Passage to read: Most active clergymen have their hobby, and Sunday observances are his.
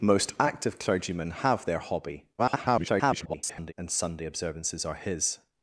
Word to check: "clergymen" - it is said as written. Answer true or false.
true